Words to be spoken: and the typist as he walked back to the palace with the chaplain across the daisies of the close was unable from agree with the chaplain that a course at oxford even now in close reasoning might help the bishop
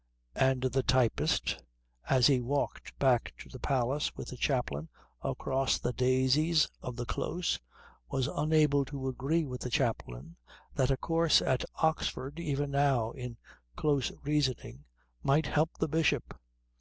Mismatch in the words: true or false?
true